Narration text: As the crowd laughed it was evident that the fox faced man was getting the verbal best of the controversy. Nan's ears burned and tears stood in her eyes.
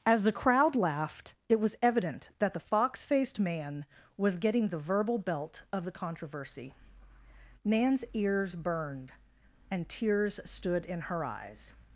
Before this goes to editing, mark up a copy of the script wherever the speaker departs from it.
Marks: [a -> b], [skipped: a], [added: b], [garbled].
As the crowd laughed it was evident that the fox faced man was getting the verbal [best -> belt] of the controversy. Nan's ears burned and tears stood in her eyes.